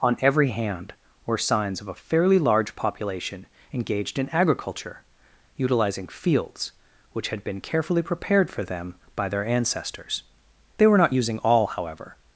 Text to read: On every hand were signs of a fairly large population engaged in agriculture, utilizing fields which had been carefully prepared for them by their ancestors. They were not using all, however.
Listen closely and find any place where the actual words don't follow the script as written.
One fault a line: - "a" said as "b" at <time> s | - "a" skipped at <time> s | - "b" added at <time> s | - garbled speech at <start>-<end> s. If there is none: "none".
none